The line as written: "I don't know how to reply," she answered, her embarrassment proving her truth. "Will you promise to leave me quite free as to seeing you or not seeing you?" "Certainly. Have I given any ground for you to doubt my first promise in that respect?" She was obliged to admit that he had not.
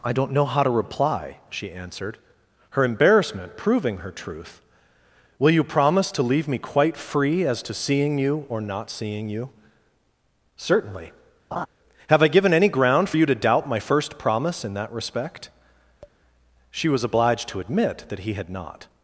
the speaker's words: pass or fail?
pass